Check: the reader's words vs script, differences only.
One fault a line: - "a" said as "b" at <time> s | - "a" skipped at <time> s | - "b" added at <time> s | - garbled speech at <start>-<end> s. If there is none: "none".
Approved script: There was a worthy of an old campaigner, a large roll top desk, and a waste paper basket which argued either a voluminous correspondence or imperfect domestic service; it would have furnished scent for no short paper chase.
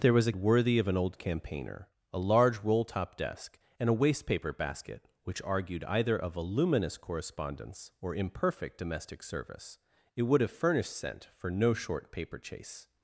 none